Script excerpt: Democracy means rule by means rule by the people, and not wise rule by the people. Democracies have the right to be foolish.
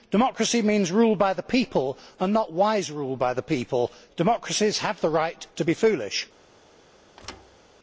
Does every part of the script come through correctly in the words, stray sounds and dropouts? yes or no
no